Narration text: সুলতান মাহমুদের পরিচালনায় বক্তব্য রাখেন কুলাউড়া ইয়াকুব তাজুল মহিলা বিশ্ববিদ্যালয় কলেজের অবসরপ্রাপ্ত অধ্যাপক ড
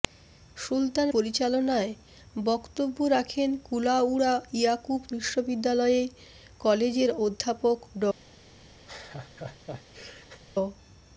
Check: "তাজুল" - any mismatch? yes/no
yes